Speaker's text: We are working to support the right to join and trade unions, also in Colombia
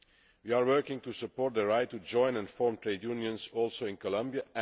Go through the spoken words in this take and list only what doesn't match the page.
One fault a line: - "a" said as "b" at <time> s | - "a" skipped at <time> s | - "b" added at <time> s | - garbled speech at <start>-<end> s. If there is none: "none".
- "form" added at 2.5 s